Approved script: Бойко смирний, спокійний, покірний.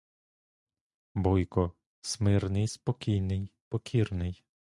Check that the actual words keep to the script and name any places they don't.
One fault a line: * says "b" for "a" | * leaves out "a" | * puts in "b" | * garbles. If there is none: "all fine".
all fine